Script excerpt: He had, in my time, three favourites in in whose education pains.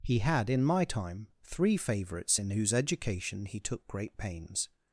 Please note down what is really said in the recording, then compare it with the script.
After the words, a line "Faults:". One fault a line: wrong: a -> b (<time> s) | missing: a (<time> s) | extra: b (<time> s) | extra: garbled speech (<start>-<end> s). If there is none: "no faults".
He had, in my time, three favourites in whose education he took great pains.
Faults:
missing: in (2.5 s)
extra: he took great (3.4 s)